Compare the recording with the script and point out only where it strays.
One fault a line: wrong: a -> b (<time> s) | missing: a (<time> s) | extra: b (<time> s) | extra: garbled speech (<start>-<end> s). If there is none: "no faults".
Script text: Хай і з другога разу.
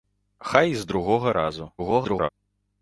extra: garbled speech (1.8-2.3 s)